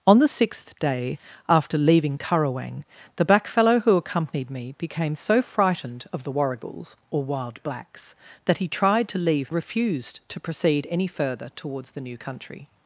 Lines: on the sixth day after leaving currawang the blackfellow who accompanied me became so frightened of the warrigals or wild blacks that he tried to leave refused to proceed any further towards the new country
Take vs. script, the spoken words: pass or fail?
pass